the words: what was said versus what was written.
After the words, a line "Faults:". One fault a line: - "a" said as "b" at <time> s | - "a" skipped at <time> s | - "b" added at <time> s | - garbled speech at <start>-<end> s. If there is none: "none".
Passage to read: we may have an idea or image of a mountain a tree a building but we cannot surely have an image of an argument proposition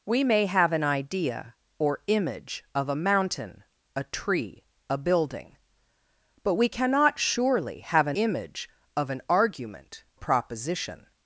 we may have an idea or image of a mountain a tree a building but we cannot surely have an image of an argument proposition
Faults:
none